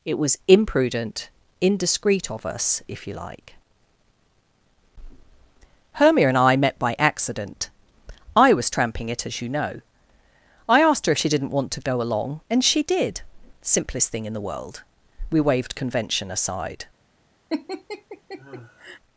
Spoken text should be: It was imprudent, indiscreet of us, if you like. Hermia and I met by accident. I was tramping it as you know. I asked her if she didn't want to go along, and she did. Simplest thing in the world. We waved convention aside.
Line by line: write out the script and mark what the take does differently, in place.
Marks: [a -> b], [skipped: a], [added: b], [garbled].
It was imprudent, indiscreet of us, if you like. Hermia and I met by accident. I was tramping it as you know. I asked her if she didn't want to go along, and she did. Simplest thing in the world. We waved convention aside.